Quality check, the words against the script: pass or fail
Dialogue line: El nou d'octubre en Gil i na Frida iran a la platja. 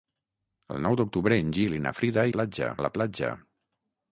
fail